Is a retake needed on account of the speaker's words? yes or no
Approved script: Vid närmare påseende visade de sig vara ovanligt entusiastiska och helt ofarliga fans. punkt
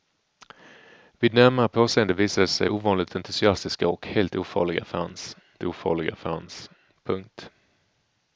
yes